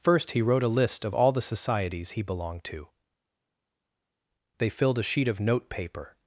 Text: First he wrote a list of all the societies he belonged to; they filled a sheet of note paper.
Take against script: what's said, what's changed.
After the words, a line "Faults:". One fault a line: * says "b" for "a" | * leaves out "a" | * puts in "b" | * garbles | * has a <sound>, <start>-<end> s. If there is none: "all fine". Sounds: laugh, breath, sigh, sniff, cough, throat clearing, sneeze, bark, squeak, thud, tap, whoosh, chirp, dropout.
First he wrote a list of all the societies he belonged to; they filled a sheet of note paper.
Faults:
all fine